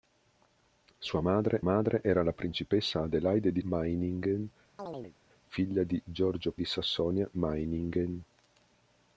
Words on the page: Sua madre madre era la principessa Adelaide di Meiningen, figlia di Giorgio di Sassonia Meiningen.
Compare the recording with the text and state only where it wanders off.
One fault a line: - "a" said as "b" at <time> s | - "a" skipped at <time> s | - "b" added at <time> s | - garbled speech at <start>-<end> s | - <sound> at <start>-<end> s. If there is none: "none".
- chirp at 4.8-5.2 s